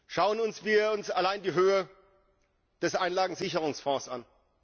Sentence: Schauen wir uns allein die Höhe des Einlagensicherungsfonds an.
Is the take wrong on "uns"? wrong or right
right